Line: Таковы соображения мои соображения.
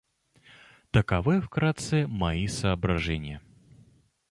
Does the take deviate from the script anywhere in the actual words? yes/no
yes